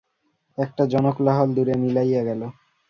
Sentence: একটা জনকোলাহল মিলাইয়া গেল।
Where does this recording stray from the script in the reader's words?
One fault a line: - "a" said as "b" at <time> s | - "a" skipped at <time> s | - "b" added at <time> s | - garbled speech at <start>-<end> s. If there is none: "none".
- "দূরে" added at 1.6 s